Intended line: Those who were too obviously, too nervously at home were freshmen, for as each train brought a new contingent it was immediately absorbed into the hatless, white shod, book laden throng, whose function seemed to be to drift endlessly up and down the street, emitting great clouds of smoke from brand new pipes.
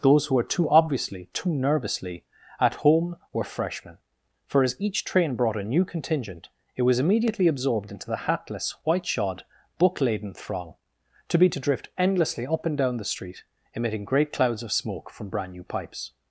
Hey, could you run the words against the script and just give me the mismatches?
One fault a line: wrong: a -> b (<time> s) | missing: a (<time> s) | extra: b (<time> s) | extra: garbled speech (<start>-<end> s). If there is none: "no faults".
missing: whose function seemed (10.8 s)